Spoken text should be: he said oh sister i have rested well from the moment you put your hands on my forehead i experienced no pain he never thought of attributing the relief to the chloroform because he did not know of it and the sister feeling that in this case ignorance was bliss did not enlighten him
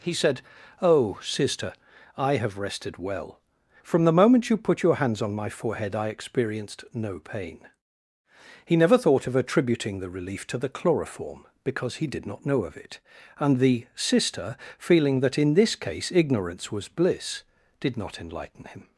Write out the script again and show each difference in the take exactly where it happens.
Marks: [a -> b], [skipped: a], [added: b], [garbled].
he said oh sister i have rested well from the moment you put your hands on my forehead i experienced no pain he never thought of attributing the relief to the chloroform because he did not know of it and the sister feeling that in this case ignorance was bliss did not enlighten him